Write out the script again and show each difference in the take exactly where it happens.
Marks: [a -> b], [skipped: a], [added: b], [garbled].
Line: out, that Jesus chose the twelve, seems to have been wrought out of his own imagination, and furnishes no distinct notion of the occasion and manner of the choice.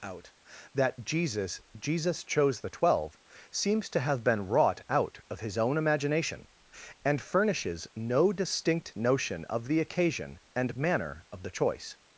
out, that Jesus [added: Jesus] chose the twelve, seems to have been wrought out of his own imagination, and furnishes no distinct notion of the occasion and manner of the choice.